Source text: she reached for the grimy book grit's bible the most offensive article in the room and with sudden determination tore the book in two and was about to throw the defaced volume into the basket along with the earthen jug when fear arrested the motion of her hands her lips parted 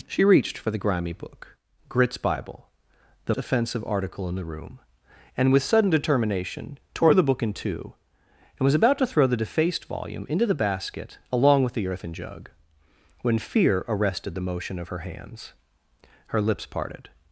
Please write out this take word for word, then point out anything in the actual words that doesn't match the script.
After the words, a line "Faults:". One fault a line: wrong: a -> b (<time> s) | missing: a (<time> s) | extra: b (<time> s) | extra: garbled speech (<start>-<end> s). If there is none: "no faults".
she reached for the grimy book grit's bible the offensive article in the room and with sudden determination tore the book in two and was about to throw the defaced volume into the basket along with the earthen jug when fear arrested the motion of her hands her lips parted
Faults:
missing: most (3.4 s)